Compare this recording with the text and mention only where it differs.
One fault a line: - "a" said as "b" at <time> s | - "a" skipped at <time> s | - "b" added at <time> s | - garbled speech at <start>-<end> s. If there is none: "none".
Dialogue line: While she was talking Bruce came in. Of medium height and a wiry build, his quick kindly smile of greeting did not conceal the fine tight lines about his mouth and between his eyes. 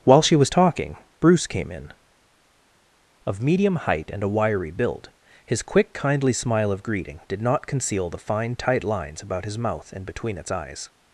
- "his" said as "its" at 10.4 s